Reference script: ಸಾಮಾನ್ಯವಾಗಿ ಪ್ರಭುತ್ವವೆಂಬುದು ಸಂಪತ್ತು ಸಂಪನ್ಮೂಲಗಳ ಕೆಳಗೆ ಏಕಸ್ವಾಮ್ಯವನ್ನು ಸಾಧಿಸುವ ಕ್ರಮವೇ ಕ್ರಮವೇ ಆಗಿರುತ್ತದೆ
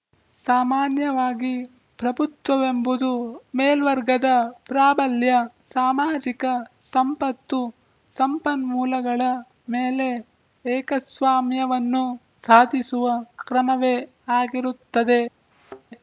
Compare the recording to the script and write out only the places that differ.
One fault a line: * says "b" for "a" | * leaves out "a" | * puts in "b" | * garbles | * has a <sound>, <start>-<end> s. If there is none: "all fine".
* puts in "ಮೇಲ್ವರ್ಗದ ಪ್ರಾಬಲ್ಯ ಸಾಮಾಜಿಕ"
* says "ಮೇಲೆ" for "ಕೆಳಗೆ"
* leaves out "ಕ್ರಮವೇ"
* has a thud, 15.5-15.8 s